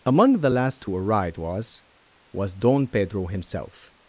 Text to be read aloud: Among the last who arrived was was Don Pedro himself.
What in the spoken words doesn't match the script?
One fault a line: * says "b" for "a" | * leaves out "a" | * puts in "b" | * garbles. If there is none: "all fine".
all fine